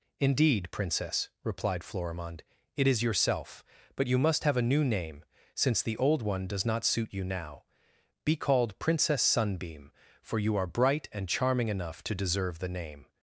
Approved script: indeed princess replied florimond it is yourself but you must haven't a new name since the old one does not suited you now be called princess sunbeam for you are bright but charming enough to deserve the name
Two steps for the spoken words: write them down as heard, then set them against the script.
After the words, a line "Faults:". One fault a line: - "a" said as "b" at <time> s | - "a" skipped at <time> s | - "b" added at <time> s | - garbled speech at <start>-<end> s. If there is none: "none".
indeed princess replied florimond it is yourself but you must have a new name since the old one does not suit you now be called princess sunbeam for you are bright and charming enough to deserve the name
Faults:
- "haven't" said as "have" at 4.4 s
- "suited" said as "suit" at 6.8 s
- "but" said as "and" at 11.1 s